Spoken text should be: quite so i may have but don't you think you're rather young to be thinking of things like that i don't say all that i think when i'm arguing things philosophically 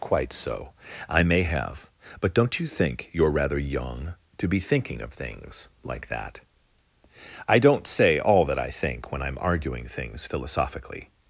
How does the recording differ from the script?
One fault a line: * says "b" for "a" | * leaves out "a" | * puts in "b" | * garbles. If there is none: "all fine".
all fine